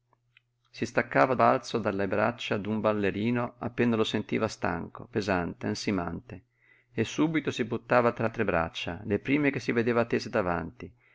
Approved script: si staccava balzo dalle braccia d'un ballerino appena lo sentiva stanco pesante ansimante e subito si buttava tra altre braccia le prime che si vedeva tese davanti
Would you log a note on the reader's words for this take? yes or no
no